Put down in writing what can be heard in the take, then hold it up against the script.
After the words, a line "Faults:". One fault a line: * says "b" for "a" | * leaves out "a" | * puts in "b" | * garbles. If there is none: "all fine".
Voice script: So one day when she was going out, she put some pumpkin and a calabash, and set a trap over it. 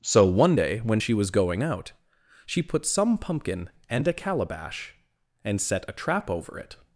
So one day when she was going out, she put some pumpkin and a calabash, and set a trap over it.
Faults:
all fine